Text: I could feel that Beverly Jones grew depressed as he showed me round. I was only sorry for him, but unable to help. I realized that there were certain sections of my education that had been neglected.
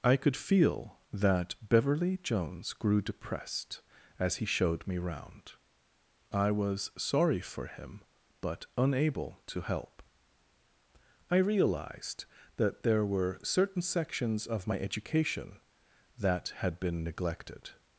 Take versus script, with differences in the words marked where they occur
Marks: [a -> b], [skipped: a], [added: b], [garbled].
I could feel that Beverly Jones grew depressed as he showed me round. I was [skipped: only] sorry for him, but unable to help. I realized that there were certain sections of my education that had been neglected.